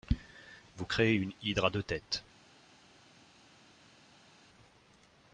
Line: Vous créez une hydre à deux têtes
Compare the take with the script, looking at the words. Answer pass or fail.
pass